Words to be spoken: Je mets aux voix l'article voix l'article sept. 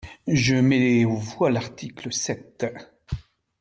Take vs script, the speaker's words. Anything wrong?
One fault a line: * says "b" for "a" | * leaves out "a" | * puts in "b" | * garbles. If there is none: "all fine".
* leaves out "voix l'article"